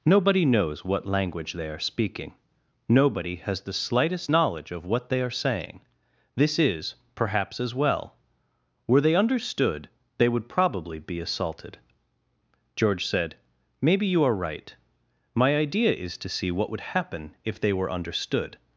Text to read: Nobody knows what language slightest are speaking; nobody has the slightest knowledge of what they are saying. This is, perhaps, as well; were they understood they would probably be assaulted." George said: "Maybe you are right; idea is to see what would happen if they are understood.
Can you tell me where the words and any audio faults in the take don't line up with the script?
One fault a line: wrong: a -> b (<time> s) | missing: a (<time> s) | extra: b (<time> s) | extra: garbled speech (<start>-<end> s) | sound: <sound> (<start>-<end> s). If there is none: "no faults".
wrong: slightest -> they (1.5 s)
extra: my (15.3 s)
wrong: are -> were (17.7 s)